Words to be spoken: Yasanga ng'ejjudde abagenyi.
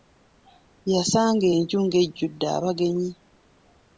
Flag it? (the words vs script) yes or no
yes